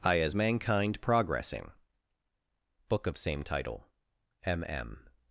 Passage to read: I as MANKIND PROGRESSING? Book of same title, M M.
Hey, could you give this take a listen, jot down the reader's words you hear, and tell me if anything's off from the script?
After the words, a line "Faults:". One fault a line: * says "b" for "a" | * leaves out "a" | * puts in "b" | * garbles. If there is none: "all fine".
I as MANKIND PROGRESSING? Book of same title, M M.
Faults:
all fine